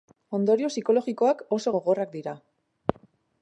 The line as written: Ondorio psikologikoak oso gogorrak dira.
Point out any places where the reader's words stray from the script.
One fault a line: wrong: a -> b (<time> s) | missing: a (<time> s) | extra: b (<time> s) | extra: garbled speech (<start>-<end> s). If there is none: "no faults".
no faults